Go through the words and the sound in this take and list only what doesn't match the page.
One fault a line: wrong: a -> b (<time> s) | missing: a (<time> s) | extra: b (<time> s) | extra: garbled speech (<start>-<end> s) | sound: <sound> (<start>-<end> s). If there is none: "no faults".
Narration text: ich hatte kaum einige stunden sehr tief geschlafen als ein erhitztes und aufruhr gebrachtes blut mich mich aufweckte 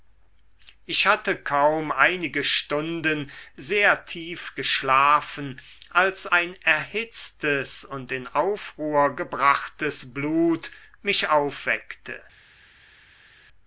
extra: in (8.1 s)
missing: mich (11.3 s)